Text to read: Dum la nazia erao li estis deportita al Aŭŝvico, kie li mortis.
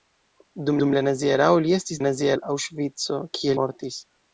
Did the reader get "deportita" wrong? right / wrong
wrong